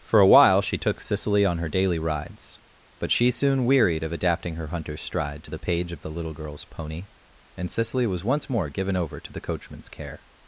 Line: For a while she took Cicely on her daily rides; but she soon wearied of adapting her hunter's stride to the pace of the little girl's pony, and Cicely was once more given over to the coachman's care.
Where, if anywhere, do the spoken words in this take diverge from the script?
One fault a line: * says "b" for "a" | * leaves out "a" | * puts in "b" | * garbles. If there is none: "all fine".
* says "page" for "pace"